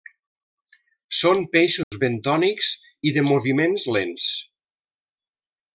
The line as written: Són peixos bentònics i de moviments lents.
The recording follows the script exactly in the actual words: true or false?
true